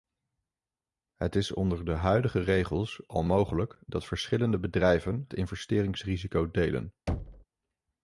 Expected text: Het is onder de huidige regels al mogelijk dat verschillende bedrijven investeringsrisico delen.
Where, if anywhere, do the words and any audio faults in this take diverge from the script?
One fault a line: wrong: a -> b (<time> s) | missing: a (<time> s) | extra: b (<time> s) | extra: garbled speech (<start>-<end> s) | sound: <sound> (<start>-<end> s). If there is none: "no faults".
sound: thud (7.1-7.4 s)